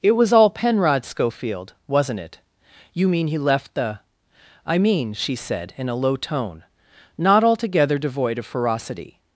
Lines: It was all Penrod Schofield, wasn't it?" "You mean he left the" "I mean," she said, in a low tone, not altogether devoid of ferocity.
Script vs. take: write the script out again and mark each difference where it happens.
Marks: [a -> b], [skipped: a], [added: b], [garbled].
It was all Penrod Schofield, wasn't it?" "You mean he left the" "I mean," she said, in a low tone, not altogether devoid of ferocity.